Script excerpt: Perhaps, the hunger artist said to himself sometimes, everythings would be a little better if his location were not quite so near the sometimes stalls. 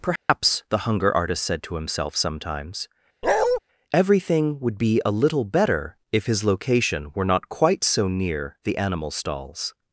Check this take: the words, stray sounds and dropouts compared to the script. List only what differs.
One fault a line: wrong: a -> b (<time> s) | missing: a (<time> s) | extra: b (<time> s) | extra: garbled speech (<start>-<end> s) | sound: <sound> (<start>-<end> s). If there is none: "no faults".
sound: dropout (0.2-0.3 s)
sound: bark (3.2-3.6 s)
wrong: everythings -> everything (3.9 s)
wrong: sometimes -> animal (8.8 s)